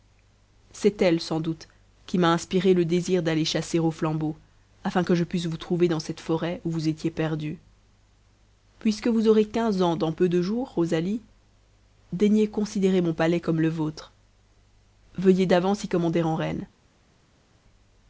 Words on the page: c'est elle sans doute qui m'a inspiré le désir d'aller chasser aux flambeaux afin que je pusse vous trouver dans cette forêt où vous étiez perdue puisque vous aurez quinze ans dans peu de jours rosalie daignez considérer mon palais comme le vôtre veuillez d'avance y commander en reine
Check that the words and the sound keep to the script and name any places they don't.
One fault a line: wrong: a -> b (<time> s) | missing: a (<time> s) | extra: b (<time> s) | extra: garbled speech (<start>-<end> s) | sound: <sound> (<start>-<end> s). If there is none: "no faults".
no faults